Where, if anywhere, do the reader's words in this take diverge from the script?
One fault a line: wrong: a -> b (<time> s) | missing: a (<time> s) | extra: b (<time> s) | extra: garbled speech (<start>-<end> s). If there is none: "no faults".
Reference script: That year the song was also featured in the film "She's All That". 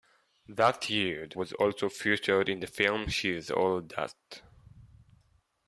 missing: song (1.4 s)